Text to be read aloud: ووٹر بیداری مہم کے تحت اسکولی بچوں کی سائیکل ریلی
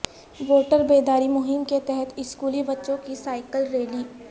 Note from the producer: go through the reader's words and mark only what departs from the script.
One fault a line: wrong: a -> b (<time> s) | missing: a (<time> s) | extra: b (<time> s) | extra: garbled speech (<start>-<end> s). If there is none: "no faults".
no faults